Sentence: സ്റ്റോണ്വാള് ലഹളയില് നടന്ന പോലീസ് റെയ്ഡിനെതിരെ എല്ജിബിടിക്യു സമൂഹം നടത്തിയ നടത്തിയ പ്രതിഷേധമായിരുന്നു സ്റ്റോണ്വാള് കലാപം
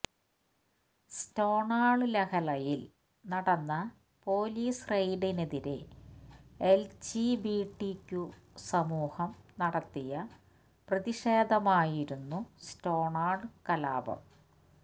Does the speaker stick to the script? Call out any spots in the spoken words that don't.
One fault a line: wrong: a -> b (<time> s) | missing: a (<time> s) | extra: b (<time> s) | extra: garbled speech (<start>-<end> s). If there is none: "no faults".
missing: നടത്തിയ (10.1 s)